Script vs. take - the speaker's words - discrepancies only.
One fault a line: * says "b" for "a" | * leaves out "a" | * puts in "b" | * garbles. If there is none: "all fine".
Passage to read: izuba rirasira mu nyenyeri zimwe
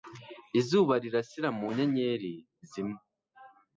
all fine